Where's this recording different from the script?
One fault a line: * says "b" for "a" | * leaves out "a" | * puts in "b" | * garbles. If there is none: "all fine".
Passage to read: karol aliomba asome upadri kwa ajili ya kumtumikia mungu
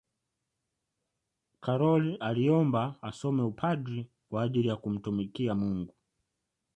all fine